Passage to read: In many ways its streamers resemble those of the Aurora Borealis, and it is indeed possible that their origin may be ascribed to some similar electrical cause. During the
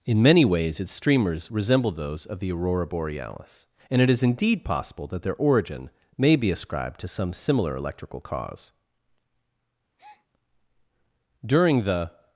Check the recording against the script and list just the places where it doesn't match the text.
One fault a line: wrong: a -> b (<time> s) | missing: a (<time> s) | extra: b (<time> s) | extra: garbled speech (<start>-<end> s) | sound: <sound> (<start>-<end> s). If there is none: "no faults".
sound: breath (10.0-10.3 s)